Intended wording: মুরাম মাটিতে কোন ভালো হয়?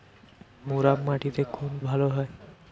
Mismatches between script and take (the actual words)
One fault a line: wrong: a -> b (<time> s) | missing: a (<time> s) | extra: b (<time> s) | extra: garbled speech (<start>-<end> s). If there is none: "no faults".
no faults